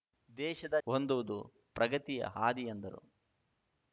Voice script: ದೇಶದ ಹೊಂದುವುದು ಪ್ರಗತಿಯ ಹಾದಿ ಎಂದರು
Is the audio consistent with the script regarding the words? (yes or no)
yes